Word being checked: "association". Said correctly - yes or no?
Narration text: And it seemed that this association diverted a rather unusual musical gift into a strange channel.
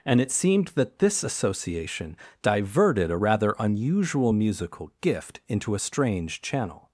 yes